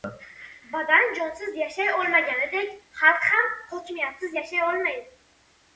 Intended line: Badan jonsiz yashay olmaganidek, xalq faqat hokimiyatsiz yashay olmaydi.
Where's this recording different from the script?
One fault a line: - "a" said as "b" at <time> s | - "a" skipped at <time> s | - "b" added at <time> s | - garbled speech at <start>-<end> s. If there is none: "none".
- "faqat" said as "ham" at 3.4 s